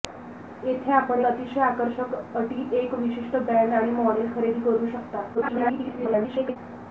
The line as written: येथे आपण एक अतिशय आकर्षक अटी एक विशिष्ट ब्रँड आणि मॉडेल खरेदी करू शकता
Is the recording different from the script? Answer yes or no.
yes